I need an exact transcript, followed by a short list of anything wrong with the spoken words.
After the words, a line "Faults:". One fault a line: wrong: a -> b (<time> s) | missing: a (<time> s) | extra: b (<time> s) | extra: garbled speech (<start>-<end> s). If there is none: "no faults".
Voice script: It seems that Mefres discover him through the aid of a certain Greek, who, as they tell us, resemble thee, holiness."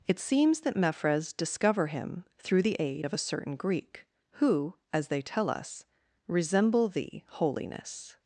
It seems that Mefres discover him through the aid of a certain Greek, who, as they tell us, resemble thee, holiness."
Faults:
no faults